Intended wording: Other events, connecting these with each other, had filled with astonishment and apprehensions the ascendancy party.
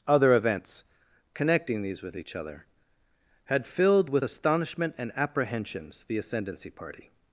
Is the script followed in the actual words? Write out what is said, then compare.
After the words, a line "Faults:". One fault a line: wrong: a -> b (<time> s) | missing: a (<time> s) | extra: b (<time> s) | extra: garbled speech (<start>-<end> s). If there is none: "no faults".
Other events, connecting these with each other, had filled with astonishment and apprehensions the ascendancy party.
Faults:
no faults